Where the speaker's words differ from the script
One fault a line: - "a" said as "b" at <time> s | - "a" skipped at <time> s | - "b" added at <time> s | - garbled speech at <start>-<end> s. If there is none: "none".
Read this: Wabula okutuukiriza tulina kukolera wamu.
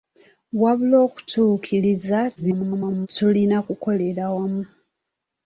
- garbled speech at 2.4-3.1 s